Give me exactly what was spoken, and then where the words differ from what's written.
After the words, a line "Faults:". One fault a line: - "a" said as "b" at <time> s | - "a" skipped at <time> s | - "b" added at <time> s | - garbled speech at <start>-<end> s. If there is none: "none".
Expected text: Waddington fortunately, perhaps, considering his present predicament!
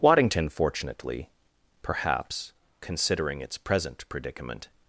Waddington fortunately, perhaps, considering its present predicament!
Faults:
- "his" said as "its" at 3.4 s